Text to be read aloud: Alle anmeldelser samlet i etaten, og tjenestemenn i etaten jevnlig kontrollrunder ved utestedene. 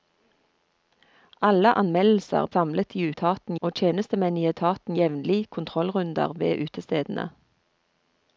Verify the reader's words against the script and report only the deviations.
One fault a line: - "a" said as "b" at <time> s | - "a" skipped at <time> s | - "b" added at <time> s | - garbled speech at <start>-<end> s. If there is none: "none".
none